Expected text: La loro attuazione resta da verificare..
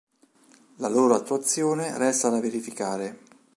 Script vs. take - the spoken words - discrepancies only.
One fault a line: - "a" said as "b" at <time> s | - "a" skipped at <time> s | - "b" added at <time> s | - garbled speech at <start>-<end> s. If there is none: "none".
none